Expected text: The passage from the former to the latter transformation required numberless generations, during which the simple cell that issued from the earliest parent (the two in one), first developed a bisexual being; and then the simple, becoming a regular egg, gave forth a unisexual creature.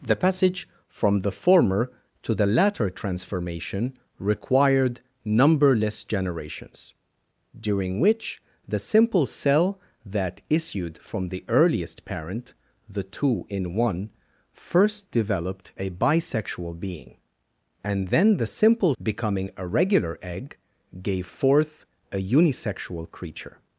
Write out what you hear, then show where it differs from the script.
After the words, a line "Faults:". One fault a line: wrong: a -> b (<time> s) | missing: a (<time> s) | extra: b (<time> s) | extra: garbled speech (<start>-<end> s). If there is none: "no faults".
The passage from the former to the latter transformation required numberless generations, during which the simple cell that issued from the earliest parent (the two in one), first developed a bisexual being; and then the simple, becoming a regular egg, gave forth a unisexual creature.
Faults:
no faults